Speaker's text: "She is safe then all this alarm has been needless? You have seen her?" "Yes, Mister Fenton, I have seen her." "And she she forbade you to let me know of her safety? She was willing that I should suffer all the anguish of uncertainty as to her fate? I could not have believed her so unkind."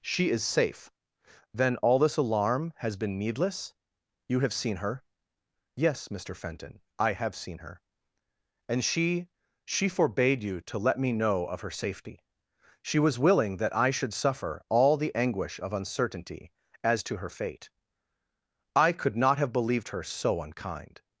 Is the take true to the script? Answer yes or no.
yes